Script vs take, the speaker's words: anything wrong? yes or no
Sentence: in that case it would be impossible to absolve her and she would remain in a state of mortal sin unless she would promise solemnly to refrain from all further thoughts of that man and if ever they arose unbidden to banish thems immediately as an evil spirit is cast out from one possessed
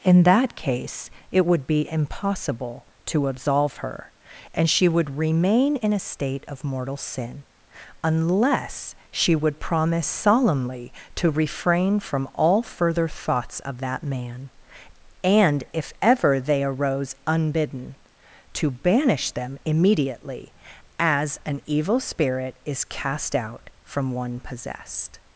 yes